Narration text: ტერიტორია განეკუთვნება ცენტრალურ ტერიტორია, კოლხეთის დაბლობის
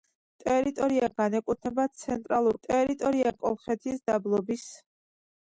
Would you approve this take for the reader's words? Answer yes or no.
yes